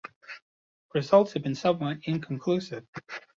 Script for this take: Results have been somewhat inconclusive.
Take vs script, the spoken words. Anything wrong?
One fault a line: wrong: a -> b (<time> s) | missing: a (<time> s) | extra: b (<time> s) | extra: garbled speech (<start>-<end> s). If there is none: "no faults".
no faults